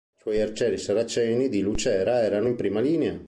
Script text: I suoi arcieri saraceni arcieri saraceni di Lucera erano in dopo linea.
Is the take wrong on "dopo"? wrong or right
wrong